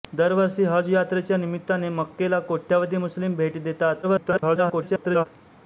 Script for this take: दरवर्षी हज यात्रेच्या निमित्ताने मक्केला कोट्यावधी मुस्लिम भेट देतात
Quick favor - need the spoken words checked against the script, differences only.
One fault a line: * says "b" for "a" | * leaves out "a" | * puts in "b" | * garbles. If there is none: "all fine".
* garbles